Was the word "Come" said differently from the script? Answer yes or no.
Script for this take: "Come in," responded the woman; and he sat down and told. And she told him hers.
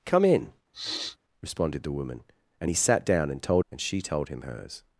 no